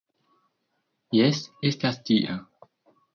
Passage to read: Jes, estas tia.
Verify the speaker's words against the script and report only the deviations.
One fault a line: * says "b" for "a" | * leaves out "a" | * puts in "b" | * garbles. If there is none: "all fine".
all fine